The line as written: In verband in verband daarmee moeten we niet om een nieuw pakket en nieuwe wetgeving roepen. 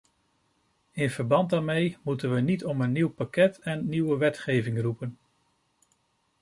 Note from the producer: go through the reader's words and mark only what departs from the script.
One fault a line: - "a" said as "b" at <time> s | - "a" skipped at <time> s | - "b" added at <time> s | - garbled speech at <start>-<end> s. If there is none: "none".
- "in verband" skipped at 1.5 s